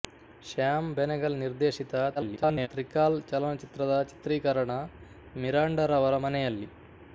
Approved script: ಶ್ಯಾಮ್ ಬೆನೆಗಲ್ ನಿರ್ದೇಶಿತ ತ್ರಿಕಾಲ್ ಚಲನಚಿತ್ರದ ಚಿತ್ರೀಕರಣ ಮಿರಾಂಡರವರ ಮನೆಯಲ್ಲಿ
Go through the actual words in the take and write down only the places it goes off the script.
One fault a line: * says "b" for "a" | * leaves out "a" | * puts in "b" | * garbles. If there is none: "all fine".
* garbles